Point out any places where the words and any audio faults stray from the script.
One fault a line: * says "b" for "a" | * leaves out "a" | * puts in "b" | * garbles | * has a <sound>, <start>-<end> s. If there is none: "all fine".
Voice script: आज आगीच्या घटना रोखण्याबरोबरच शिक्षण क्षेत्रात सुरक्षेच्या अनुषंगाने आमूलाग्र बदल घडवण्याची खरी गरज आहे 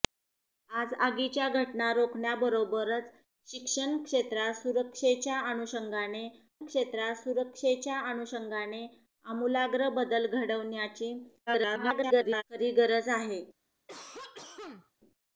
* puts in "क्षेत्रात सुरक्षेच्या अनुषंगाने"
* garbles
* has a cough, 13.9-14.9 s